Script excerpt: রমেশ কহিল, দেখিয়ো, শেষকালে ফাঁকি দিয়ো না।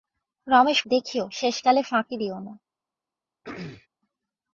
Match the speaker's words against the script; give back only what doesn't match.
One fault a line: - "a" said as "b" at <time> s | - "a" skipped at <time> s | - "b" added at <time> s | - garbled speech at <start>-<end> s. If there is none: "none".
- "কহিল" skipped at 0.8 s